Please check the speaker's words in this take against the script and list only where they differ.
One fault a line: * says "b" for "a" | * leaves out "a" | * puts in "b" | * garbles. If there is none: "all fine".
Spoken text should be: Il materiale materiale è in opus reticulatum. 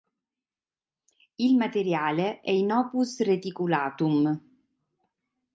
* leaves out "materiale"